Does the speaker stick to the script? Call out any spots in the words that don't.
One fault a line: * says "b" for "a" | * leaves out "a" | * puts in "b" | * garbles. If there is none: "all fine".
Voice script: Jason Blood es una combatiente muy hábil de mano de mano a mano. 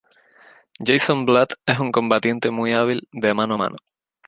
* says "un" for "una"
* leaves out "de mano"